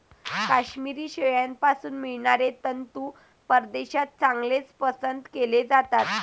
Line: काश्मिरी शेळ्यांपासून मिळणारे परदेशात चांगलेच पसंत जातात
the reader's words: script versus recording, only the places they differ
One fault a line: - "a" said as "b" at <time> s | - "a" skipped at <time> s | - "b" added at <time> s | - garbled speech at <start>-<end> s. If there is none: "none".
- "तंतू" added at 2.6 s
- "केले" added at 5.3 s